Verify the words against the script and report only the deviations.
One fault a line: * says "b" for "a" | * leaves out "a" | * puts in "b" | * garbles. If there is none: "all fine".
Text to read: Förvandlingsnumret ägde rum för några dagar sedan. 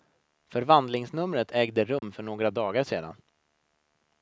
all fine